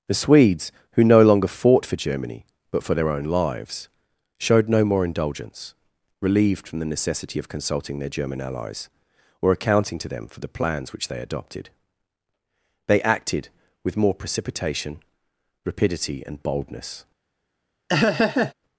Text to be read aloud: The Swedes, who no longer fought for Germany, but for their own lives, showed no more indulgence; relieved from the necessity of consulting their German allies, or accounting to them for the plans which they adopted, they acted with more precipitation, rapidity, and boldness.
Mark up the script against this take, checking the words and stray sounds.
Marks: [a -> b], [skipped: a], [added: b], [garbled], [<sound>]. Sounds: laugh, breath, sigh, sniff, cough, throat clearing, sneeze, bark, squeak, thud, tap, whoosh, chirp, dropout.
The Swedes, who no longer fought for Germany, but for their own lives, showed no more indulgence; relieved from the necessity of consulting their German allies, or accounting to them for the plans which they adopted, they acted with more precipitation, rapidity, and boldness. [laugh]